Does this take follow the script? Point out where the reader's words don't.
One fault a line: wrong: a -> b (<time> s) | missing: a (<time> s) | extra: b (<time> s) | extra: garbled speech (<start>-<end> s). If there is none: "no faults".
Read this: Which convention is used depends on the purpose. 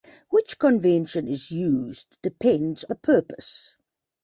missing: on (2.9 s)